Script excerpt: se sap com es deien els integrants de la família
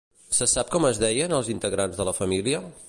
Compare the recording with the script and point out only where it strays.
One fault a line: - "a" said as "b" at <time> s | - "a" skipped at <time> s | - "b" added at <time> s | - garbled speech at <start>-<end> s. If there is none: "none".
none